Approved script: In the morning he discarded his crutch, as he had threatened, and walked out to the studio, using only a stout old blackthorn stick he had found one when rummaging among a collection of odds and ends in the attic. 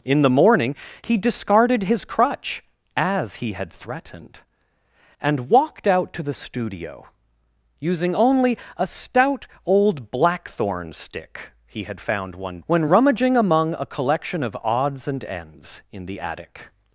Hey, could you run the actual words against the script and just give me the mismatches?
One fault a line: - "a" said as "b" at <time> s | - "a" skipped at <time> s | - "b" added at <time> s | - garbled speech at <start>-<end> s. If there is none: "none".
none